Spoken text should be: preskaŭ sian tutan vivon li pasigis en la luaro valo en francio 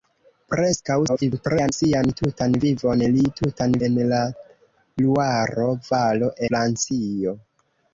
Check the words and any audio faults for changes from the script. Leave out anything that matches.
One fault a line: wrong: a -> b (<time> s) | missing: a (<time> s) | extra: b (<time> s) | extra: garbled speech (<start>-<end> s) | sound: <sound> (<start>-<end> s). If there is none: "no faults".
extra: garbled speech (1.1-1.7 s)
wrong: pasigis -> tutan (3.4 s)
missing: en (6.3 s)